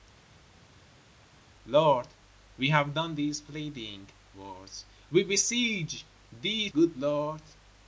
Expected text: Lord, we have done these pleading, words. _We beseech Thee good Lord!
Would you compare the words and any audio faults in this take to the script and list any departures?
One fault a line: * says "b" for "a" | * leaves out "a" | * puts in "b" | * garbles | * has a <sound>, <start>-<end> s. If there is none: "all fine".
all fine